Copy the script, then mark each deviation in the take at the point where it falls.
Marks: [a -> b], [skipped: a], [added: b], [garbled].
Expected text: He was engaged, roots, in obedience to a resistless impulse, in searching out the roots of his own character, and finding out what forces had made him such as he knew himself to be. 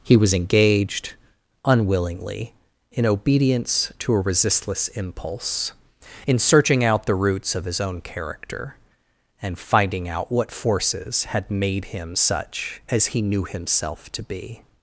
He was engaged, [roots, -> unwillingly] in obedience to a resistless impulse, in searching out the roots of his own character, and finding out what forces had made him such as he knew himself to be.